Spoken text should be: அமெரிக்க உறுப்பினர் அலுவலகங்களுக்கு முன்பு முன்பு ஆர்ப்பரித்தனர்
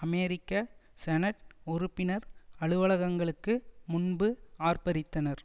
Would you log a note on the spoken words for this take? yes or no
yes